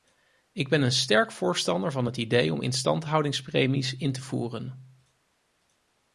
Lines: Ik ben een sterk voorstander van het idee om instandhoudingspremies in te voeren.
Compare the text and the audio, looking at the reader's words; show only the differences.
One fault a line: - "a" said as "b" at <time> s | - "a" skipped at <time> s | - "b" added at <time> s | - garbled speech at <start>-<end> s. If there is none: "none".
none